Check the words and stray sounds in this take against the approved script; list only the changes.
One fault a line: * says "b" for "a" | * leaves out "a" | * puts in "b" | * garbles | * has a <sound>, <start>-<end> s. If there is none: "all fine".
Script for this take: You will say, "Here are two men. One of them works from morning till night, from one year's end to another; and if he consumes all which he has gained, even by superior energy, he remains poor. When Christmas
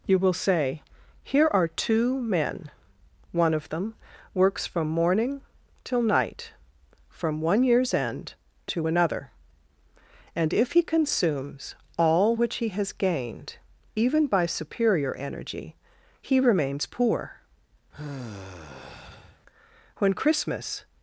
* has a sigh, 17.9-19.4 s